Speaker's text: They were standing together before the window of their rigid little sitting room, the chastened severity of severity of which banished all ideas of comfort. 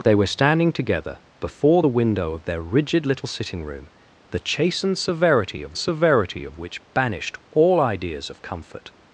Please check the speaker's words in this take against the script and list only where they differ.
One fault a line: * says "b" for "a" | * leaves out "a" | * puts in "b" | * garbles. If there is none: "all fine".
all fine